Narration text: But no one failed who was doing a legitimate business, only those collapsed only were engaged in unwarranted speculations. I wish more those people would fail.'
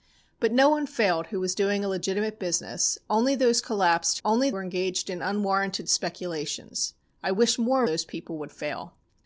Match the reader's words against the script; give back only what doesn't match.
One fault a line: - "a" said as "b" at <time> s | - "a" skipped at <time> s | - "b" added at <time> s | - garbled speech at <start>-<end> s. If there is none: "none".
none